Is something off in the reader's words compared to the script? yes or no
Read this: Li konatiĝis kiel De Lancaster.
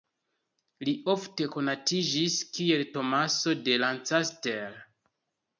yes